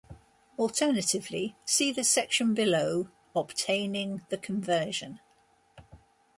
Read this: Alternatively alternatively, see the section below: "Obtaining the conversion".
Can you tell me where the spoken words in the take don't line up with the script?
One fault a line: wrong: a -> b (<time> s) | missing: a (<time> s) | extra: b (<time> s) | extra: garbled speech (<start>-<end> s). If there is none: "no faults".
missing: alternatively (1.6 s)